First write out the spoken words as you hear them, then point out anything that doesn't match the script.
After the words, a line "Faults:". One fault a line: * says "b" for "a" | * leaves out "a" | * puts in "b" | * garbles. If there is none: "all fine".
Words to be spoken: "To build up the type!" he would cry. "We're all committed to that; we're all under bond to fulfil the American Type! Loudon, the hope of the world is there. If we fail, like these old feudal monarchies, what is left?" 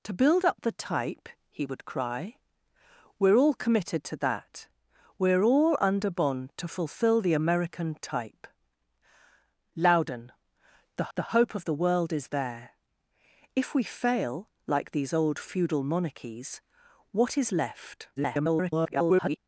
"To build up the type!" he would cry. "We're all committed to that; we're all under bond to fulfil the American Type! Loudon, the the hope of the world is there. If we fail, like these old feudal monarchies, what is left?" [garbled]
Faults:
* puts in "the"
* garbles